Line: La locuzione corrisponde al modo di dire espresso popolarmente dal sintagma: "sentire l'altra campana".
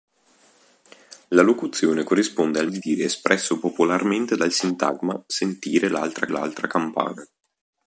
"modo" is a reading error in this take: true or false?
true